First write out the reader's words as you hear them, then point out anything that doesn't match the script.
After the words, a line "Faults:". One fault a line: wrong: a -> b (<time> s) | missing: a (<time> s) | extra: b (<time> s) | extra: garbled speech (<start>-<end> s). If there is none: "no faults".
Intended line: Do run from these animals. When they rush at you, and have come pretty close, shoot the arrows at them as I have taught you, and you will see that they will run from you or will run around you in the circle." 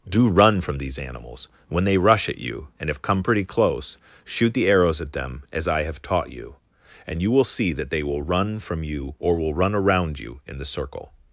Do run from these animals. When they rush at you, and have come pretty close, shoot the arrows at them as I have taught you, and you will see that they will run from you or will run around you in the circle."
Faults:
no faults